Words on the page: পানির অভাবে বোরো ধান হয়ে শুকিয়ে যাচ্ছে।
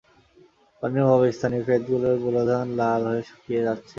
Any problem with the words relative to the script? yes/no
yes